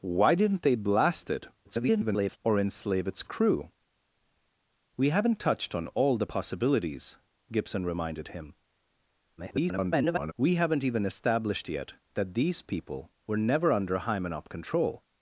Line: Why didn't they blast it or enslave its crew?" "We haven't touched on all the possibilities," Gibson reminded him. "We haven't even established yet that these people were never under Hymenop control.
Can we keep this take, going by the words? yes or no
no